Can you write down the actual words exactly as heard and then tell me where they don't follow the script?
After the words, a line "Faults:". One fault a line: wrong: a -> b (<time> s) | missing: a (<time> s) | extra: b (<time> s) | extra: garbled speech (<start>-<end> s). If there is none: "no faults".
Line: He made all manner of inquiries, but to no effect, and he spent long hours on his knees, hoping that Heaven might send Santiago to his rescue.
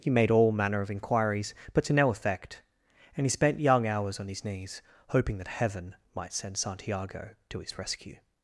He made all manner of inquiries, but to no effect, and he spent young hours on his knees, hoping that Heaven might send Santiago to his rescue.
Faults:
wrong: long -> young (3.6 s)